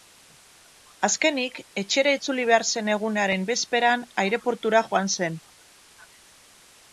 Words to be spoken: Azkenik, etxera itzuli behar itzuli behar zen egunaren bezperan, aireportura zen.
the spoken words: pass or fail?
fail